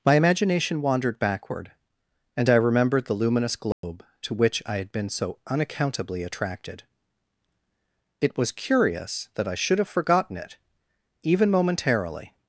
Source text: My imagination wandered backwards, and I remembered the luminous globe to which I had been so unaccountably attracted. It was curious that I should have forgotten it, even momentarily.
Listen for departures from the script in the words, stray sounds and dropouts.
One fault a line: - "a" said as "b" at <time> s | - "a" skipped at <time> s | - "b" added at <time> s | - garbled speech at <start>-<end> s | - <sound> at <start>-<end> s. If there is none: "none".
- "backwards" said as "backward" at 1.2 s
- dropout at 3.7-3.8 s